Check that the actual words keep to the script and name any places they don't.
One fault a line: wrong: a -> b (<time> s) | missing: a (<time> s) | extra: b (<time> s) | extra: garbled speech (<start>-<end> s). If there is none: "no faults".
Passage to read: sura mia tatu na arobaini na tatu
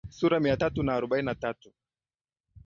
no faults